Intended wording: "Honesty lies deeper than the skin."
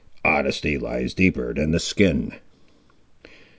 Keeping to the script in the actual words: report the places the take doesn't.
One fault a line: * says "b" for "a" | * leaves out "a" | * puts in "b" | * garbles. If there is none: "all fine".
all fine